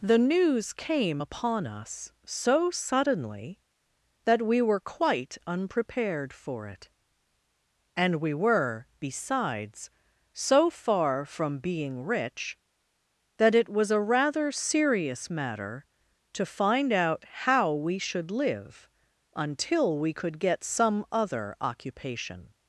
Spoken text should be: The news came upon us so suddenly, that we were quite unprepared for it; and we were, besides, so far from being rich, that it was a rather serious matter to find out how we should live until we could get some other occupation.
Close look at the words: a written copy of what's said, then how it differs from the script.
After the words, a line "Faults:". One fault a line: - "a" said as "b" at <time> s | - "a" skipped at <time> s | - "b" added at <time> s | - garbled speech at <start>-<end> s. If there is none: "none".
The news came upon us so suddenly, that we were quite unprepared for it; and we were, besides, so far from being rich, that it was a rather serious matter to find out how we should live until we could get some other occupation.
Faults:
none